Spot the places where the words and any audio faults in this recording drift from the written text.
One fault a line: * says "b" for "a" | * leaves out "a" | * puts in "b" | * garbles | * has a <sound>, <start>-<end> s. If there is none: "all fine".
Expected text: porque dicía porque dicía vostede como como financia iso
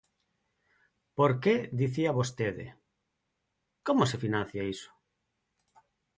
* leaves out "porque dicía"
* says "se" for "como"